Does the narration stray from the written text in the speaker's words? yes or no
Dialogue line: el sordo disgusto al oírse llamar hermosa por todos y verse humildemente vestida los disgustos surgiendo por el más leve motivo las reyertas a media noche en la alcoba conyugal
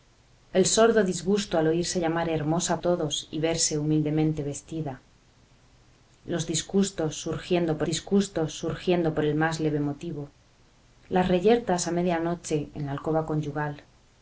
yes